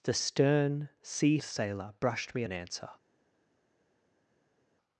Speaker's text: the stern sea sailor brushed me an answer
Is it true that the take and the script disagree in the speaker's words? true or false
false